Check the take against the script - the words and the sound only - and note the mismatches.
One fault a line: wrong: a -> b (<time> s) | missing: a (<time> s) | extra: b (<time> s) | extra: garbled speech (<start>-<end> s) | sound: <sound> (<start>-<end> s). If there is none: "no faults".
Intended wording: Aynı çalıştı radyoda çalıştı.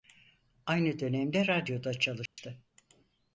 wrong: çalıştı -> dönemde (1.0 s)
sound: dropout (2.3-2.4 s)